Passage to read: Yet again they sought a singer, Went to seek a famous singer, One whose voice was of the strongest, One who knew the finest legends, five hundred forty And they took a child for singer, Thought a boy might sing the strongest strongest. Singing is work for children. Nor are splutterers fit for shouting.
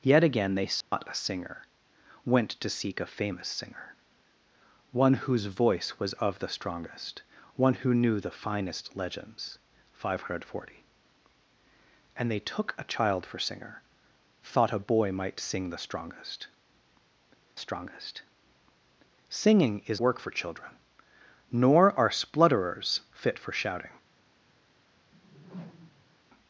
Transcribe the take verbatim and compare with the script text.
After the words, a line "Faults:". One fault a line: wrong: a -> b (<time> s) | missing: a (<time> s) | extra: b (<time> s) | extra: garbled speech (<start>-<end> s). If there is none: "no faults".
Yet again they sought a singer, Went to seek a famous singer, One whose voice was of the strongest, One who knew the finest legends, five hundred forty And they took a child for singer, Thought a boy might sing the strongest strongest. Singing is work for children. Nor are splutterers fit for shouting.
Faults:
no faults